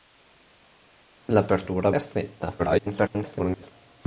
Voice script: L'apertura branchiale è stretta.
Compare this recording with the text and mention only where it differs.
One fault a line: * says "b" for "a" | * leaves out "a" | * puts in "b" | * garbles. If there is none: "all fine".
* leaves out "branchiale"
* garbles